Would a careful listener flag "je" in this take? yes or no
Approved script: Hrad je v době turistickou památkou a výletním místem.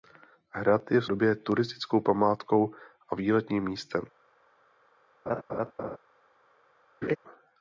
no